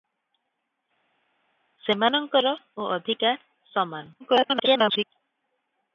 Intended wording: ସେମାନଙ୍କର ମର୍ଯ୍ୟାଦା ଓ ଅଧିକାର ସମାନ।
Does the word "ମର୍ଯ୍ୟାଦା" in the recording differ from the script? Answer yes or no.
yes